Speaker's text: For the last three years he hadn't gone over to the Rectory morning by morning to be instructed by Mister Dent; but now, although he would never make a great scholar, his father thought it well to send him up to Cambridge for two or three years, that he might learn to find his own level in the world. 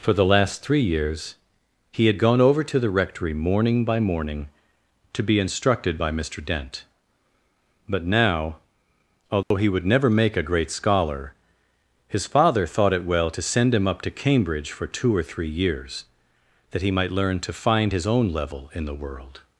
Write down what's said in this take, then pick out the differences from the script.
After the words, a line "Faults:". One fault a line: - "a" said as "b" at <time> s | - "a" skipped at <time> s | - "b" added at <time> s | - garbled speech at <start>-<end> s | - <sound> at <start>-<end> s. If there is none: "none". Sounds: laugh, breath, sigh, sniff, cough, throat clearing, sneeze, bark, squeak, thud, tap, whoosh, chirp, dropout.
For the last three years he had gone over to the Rectory morning by morning to be instructed by Mister Dent; but now, although he would never make a great scholar, his father thought it well to send him up to Cambridge for two or three years, that he might learn to find his own level in the world.
Faults:
- "hadn't" said as "had" at 2.1 s
- dropout at 9.4-9.5 s